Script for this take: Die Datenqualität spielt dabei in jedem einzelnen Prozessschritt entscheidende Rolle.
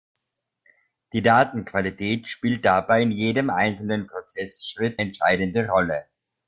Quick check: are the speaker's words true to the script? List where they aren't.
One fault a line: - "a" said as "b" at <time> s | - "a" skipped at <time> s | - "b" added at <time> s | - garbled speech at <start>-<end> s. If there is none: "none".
none